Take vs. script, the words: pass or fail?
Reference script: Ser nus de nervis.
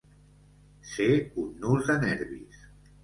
fail